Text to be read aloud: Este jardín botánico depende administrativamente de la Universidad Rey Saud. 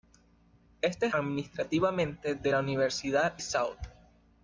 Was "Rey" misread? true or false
true